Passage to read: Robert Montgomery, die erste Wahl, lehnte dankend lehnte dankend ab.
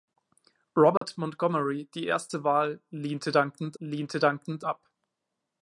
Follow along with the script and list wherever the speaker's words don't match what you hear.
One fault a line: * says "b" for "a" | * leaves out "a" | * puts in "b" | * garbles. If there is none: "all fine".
all fine